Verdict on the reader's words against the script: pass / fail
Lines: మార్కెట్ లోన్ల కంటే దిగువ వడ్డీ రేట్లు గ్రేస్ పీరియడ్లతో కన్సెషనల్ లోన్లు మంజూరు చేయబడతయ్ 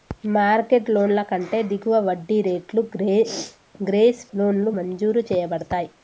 fail